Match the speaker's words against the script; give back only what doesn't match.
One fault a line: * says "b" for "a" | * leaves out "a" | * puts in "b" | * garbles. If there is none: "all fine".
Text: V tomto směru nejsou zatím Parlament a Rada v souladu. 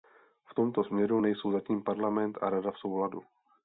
all fine